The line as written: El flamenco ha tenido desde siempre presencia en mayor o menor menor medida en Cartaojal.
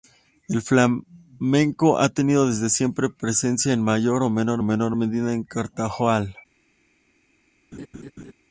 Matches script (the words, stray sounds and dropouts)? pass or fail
fail